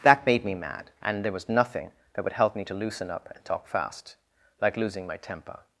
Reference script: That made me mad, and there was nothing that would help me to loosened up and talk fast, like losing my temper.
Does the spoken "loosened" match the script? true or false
false